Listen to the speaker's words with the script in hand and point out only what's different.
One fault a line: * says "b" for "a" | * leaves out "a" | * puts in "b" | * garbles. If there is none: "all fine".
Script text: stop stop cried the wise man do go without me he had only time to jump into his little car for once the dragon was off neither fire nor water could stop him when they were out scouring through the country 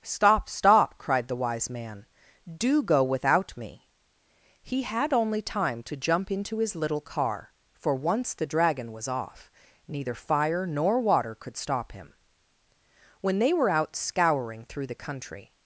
all fine